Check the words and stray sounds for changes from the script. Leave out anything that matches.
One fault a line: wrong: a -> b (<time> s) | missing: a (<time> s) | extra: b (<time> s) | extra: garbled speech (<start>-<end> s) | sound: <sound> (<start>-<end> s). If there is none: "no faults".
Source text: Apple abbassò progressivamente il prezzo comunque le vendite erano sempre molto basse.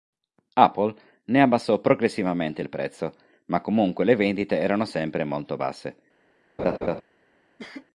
extra: ne (1.2 s)
extra: ma (3.5 s)
sound: laugh (6.6-7.0 s)
sound: cough (7.6-7.9 s)